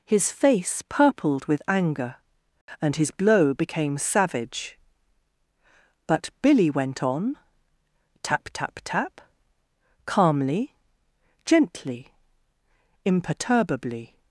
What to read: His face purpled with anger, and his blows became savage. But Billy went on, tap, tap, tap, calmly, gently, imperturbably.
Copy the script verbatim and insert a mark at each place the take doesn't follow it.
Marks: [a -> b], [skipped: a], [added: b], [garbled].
His face purpled with anger, and his [blows -> blow] became savage. But Billy went on, tap, tap, tap, calmly, gently, imperturbably.